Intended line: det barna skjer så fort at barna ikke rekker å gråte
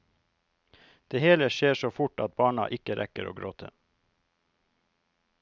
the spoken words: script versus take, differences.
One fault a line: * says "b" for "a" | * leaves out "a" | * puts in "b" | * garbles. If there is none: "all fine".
* says "hele" for "barna"